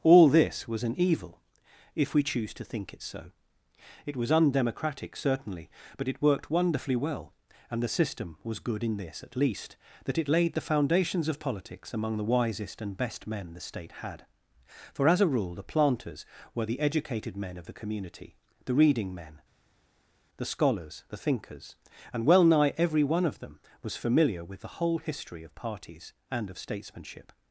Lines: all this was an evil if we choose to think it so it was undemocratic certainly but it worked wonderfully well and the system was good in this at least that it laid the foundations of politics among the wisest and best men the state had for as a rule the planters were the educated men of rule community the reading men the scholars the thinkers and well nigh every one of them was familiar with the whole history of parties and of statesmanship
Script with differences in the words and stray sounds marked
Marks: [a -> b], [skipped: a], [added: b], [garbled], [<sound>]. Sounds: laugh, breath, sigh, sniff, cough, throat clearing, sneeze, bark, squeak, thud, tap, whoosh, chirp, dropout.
all this was an evil if we choose to think it so it was undemocratic certainly but it worked wonderfully well and the system was good in this at least that it laid the foundations of politics among the wisest and best men the state had for as a rule the planters were the educated men of [rule -> the] community the reading men the scholars the thinkers and well nigh every one of them was familiar with the whole history of parties and of statesmanship